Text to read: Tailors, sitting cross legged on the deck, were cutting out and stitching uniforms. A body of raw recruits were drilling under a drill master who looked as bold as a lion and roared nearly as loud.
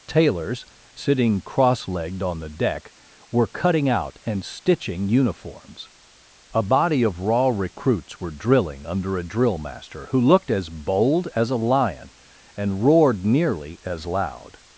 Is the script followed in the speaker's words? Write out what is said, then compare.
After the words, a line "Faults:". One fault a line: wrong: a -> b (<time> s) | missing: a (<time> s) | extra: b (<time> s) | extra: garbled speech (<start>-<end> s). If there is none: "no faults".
Tailors, sitting cross legged on the deck, were cutting out and stitching uniforms. A body of raw recruits were drilling under a drill master who looked as bold as a lion and roared nearly as loud.
Faults:
no faults